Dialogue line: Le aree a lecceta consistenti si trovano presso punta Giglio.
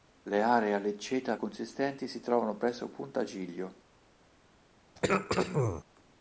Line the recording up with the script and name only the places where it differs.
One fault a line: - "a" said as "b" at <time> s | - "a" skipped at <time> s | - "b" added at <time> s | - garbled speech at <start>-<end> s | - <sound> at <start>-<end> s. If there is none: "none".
- throat clearing at 5.0-5.8 s